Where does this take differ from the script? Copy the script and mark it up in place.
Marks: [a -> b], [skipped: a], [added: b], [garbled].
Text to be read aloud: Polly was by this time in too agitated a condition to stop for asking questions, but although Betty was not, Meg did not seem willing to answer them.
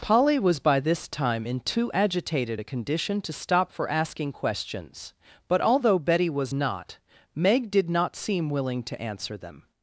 Polly was by this time in too agitated a condition to stop for asking questions, but although Betty was not, Meg did not seem willing to answer them.